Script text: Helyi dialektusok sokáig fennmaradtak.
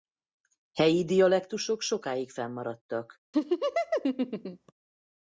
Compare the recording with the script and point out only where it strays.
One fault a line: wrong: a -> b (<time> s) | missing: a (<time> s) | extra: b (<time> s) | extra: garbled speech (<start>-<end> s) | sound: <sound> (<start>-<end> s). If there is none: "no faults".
sound: laugh (3.3-4.7 s)